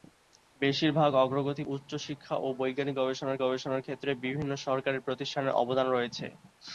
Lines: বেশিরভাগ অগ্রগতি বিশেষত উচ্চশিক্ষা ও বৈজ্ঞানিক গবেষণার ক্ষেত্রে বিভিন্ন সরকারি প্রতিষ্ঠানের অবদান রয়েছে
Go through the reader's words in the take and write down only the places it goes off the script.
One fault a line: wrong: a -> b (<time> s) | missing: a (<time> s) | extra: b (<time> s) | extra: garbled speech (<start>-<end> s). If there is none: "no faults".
missing: বিশেষত (1.6 s)
extra: গবেষণার (3.4 s)